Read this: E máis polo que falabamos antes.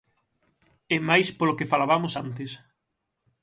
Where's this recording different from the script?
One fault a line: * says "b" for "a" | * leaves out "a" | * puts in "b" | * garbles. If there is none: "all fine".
all fine